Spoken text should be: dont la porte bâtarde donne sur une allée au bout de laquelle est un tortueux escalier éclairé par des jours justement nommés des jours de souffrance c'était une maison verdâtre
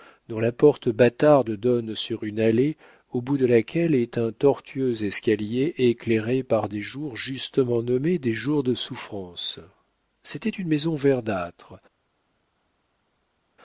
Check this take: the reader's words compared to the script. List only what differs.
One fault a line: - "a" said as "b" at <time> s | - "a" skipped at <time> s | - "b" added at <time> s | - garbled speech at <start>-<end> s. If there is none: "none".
none